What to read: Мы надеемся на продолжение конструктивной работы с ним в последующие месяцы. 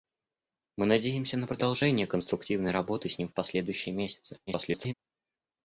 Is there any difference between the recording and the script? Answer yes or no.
yes